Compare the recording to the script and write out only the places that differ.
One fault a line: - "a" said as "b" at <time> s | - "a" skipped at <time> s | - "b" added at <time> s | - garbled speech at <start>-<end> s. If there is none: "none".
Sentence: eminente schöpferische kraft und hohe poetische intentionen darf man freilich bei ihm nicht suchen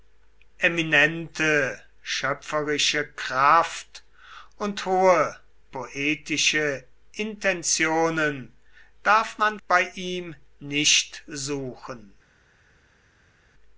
- "freilich" skipped at 9.6 s